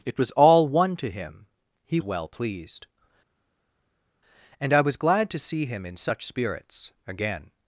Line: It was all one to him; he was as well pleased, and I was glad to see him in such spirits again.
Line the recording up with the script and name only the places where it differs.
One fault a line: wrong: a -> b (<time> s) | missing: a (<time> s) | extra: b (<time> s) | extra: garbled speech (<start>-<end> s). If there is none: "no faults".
missing: was as (2.0 s)